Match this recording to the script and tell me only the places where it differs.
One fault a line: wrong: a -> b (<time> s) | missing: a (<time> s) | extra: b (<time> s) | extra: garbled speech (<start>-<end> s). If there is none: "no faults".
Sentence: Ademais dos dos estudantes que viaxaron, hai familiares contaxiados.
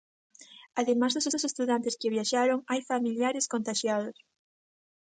no faults